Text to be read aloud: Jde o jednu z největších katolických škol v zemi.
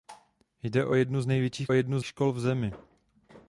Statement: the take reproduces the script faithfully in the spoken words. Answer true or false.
false